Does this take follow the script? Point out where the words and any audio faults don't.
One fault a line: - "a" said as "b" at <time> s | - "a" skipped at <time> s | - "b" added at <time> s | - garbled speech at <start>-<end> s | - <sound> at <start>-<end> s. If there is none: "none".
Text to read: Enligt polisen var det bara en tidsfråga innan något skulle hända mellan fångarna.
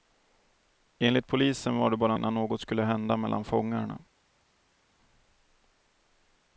- "en tidsfråga" skipped at 2.1 s